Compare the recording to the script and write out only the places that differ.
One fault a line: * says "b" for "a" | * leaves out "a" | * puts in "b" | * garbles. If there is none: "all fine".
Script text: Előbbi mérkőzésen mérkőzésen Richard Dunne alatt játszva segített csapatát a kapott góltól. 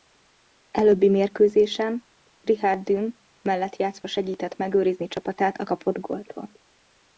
* leaves out "mérkőzésen"
* says "mellett" for "alatt"
* puts in "megőrizni"